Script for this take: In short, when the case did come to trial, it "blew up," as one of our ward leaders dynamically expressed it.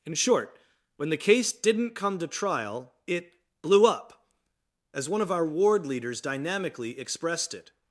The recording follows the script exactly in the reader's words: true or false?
false